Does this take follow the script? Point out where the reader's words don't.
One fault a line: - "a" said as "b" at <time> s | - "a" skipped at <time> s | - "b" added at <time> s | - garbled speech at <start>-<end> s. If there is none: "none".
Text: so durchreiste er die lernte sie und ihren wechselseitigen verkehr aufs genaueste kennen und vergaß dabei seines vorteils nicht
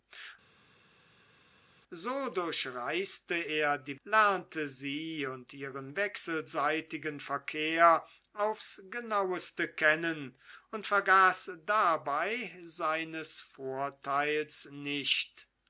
none